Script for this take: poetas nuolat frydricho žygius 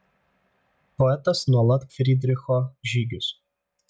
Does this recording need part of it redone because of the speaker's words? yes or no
no